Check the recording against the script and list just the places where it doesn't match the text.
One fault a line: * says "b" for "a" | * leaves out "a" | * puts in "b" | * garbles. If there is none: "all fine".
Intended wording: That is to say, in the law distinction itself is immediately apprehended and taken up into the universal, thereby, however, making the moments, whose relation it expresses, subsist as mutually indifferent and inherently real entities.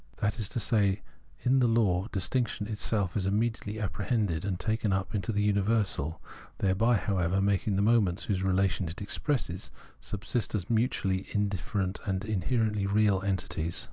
all fine